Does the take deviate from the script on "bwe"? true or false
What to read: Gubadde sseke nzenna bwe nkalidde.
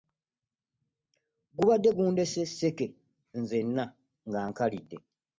true